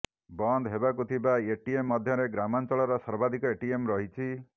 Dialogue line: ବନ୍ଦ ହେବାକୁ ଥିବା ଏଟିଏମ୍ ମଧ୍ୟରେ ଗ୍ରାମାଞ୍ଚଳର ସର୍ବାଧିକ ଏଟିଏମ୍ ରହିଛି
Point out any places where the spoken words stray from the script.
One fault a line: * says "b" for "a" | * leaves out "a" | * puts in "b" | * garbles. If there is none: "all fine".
all fine